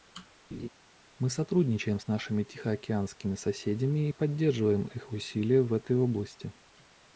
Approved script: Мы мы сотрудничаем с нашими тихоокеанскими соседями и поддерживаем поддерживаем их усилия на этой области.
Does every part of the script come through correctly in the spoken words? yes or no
no